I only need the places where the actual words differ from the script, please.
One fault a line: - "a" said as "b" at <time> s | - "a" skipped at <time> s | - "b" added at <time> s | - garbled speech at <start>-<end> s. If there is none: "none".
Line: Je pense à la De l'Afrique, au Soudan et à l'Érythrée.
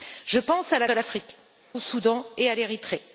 none